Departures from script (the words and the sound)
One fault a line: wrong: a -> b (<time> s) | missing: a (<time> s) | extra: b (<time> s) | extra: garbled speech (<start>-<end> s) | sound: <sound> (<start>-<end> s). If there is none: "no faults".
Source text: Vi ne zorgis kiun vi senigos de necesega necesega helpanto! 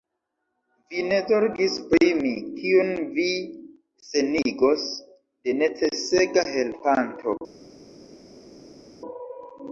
extra: pri mi (1.9 s)
missing: necesega (6.5 s)